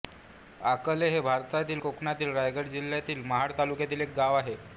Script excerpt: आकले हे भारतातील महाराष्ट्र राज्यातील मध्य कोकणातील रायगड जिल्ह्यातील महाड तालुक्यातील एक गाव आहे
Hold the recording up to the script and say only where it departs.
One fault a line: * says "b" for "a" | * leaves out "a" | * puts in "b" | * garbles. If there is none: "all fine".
* leaves out "महाराष्ट्र राज्यातील मध्य"